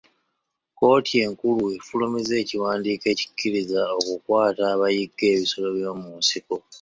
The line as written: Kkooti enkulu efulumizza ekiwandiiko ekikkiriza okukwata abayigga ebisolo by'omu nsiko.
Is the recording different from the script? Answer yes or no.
no